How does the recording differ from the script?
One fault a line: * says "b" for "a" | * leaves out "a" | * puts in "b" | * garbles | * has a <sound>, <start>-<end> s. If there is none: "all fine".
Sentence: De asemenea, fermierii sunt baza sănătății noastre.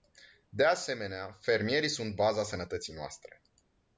all fine